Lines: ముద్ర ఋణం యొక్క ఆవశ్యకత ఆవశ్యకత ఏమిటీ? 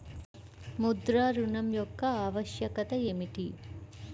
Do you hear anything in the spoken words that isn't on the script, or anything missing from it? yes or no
yes